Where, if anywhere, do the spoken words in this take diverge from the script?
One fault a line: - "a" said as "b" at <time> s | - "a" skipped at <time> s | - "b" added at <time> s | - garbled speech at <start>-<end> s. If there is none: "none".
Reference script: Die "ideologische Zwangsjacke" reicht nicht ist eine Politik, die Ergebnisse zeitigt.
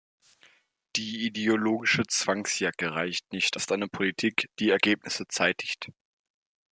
none